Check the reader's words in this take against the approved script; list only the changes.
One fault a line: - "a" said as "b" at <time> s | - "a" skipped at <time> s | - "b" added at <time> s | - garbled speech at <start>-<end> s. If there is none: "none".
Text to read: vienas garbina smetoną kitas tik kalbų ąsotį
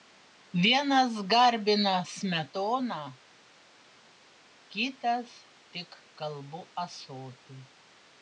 none